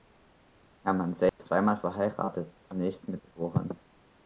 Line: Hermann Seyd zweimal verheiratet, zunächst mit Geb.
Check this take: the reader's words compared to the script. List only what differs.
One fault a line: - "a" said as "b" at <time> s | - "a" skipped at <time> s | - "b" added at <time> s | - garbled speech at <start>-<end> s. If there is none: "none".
none